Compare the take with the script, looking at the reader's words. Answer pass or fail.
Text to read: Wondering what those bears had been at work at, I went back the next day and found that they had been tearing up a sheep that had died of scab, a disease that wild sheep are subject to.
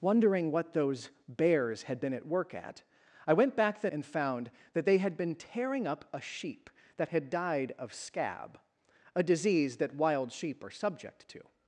fail